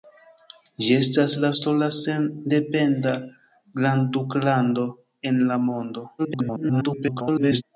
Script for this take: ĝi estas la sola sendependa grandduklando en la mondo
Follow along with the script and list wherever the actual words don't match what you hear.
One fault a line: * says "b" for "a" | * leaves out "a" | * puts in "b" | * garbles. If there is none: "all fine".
* garbles